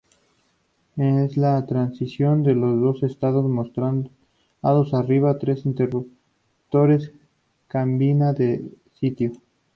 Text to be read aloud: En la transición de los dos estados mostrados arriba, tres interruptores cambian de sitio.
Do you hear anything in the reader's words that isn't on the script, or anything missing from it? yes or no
no